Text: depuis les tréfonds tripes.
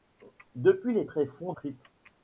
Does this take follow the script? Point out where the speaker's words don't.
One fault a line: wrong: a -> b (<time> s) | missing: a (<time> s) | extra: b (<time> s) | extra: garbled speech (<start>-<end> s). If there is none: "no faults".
no faults